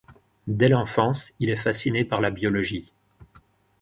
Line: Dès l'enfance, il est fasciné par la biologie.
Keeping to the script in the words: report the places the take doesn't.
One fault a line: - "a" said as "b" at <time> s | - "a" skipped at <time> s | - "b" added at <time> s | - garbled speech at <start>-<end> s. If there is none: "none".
none